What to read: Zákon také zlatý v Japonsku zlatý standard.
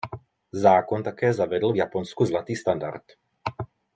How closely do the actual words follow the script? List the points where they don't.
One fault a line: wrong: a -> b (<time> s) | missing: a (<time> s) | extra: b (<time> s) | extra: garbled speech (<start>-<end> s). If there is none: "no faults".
wrong: zlatý -> zavedl (1.3 s)